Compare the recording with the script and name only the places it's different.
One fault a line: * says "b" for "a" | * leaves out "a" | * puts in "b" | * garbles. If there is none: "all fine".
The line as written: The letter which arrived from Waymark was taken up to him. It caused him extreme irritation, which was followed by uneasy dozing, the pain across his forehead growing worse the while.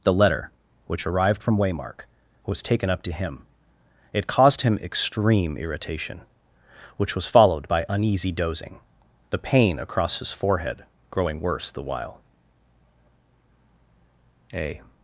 * puts in "A"